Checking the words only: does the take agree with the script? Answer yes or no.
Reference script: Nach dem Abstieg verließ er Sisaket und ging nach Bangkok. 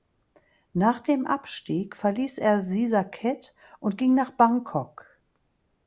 yes